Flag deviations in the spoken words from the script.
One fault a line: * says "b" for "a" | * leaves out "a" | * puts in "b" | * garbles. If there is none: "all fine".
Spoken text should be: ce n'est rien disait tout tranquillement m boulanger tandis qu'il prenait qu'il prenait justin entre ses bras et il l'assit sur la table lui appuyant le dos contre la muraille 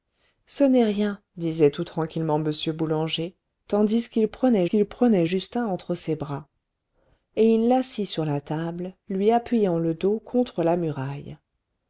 all fine